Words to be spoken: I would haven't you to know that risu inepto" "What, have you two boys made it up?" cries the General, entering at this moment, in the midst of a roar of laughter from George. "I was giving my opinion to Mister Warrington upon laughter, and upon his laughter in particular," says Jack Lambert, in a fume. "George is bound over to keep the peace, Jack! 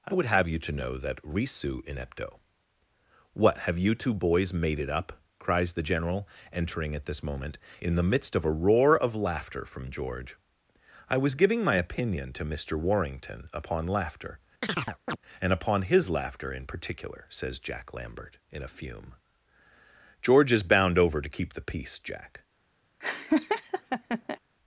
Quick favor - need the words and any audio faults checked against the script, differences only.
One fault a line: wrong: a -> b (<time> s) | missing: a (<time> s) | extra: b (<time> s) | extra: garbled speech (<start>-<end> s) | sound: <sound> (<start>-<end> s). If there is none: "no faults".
wrong: haven't -> have (0.2 s)
sound: chirp (14.6-15.2 s)
sound: laugh (23.0-24.4 s)